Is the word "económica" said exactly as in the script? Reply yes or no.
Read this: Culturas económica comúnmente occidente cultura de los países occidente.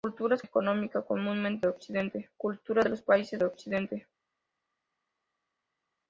yes